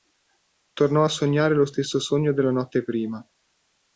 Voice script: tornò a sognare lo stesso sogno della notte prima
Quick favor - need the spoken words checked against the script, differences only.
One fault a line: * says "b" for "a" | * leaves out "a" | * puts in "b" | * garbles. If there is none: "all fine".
all fine